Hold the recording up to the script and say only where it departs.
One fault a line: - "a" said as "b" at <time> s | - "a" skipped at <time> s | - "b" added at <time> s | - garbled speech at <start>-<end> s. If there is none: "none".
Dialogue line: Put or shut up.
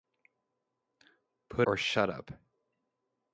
none